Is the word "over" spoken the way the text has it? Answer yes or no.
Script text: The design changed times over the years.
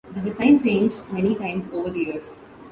yes